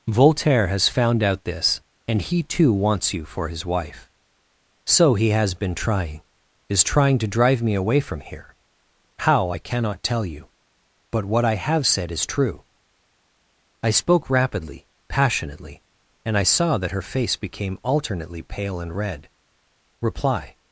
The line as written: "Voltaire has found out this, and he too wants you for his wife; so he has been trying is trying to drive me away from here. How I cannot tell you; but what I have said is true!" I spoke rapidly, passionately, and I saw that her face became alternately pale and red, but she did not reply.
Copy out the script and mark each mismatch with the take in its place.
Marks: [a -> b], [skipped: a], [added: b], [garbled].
"Voltaire has found out this, and he too wants you for his wife; so he has been trying is trying to drive me away from here. How I cannot tell you; but what I have said is true!" I spoke rapidly, passionately, and I saw that her face became alternately pale and red, [skipped: but she did not] reply.